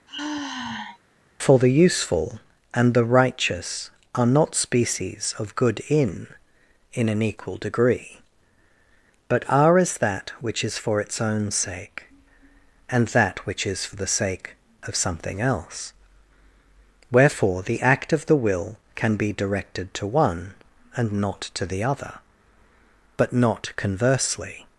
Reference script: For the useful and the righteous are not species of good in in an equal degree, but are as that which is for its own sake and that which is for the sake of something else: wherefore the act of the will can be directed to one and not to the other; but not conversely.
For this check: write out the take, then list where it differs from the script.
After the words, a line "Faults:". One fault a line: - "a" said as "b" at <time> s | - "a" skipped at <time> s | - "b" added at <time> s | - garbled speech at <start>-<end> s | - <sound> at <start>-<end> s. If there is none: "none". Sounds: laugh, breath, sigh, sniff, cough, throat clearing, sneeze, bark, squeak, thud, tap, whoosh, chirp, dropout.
For the useful and the righteous are not species of good in in an equal degree, but are as that which is for its own sake and that which is for the sake of something else: wherefore the act of the will can be directed to one and not to the other; but not conversely.
Faults:
- sigh at 0.1-1.0 s